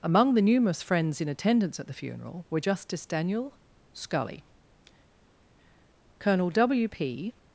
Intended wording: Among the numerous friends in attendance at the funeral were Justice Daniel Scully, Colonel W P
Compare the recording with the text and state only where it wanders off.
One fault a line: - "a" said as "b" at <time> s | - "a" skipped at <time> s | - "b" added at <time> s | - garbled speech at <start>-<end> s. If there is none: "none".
none